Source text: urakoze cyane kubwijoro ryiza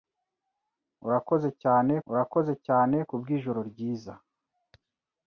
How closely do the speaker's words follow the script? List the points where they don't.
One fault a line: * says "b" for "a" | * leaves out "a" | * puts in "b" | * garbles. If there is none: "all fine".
* puts in "urakoze cyane"